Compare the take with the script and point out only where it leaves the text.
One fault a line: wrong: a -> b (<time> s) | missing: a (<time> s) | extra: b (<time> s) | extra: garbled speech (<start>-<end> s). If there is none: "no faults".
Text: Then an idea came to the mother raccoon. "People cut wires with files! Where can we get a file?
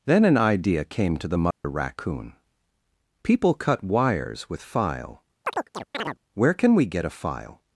wrong: files -> file (4.6 s)